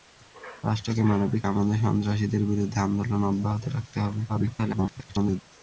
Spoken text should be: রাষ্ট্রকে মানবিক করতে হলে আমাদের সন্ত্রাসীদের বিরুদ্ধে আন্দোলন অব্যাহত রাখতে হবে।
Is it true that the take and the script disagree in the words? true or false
true